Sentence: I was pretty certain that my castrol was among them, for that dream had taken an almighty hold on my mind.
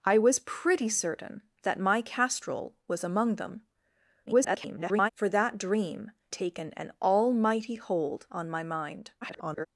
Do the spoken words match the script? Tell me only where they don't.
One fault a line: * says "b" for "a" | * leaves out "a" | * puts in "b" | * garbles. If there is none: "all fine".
* garbles
* leaves out "had"
* garbles